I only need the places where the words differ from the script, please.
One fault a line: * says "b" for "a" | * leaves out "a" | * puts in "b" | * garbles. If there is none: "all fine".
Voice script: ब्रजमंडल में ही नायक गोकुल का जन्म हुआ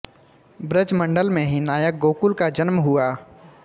all fine